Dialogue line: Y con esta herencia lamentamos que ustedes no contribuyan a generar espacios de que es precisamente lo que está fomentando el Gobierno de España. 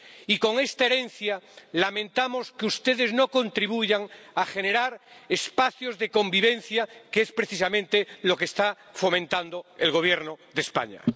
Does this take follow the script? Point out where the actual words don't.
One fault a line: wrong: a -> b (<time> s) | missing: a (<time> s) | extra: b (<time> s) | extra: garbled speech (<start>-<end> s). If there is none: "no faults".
extra: convivencia (6.1 s)